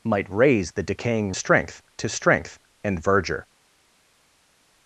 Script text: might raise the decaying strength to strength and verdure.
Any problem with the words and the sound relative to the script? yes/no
no